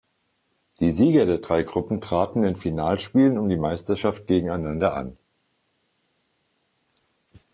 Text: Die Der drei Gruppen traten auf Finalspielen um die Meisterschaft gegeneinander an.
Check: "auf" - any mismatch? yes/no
yes